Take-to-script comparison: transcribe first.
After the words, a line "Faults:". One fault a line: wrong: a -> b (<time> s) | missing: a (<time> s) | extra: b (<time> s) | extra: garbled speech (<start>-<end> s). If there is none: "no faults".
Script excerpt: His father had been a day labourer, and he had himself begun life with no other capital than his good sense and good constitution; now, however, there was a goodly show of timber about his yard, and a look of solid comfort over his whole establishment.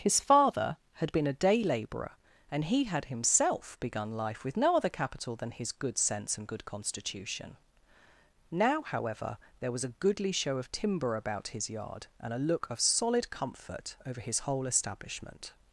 His father had been a day labourer, and he had himself begun life with no other capital than his good sense and good constitution; now, however, there was a goodly show of timber about his yard, and a look of solid comfort over his whole establishment.
Faults:
no faults